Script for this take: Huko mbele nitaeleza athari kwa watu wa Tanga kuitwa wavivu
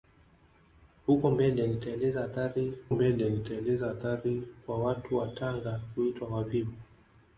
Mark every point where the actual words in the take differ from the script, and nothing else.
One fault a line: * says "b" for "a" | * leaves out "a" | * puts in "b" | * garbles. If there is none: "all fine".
* puts in "mbele nitaeleza athari"